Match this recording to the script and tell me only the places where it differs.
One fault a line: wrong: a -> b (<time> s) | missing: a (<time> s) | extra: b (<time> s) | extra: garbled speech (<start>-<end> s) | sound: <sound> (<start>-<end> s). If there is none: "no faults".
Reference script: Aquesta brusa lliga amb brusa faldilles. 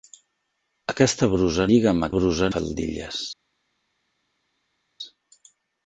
no faults